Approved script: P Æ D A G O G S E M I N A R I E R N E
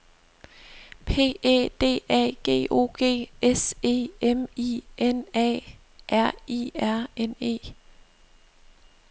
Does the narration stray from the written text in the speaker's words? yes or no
yes